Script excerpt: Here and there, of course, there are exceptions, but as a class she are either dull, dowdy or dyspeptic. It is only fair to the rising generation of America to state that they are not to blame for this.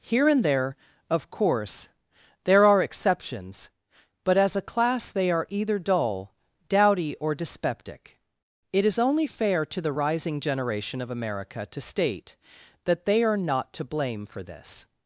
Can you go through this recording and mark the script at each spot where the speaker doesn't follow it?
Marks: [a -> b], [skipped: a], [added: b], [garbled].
Here and there, of course, there are exceptions, but as a class [she -> they] are either dull, dowdy or dyspeptic. It is only fair to the rising generation of America to state that they are not to blame for this.